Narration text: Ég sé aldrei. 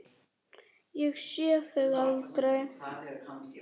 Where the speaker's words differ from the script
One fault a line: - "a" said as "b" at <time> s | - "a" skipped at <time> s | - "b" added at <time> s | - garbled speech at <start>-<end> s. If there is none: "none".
- "þig" added at 1.7 s